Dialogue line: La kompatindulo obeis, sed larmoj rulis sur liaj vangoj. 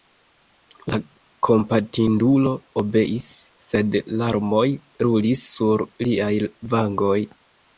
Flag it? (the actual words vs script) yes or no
no